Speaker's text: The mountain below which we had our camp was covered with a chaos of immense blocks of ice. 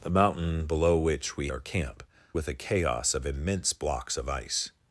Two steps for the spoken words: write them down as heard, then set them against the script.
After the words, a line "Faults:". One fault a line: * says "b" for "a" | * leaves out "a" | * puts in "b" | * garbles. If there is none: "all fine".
The mountain below which we our camp with a chaos of immense blocks of ice.
Faults:
* leaves out "had"
* leaves out "was covered"